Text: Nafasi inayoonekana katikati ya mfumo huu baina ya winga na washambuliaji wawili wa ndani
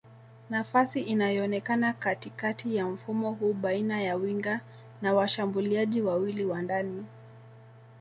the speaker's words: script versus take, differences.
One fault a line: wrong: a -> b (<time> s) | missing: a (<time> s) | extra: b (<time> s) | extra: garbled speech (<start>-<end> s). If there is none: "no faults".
no faults